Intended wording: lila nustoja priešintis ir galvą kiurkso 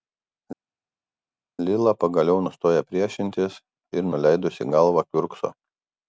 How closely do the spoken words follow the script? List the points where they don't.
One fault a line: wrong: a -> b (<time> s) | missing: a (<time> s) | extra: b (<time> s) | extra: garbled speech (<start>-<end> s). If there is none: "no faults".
extra: pagaliau (2.0 s)
extra: nuleidusi (4.1 s)